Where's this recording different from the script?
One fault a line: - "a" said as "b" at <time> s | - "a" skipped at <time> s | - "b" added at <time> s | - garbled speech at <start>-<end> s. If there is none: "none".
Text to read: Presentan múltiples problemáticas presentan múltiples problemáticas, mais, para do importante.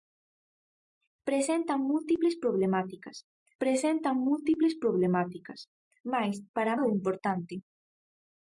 none